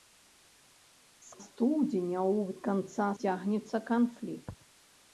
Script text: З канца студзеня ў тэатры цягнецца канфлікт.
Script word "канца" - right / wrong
wrong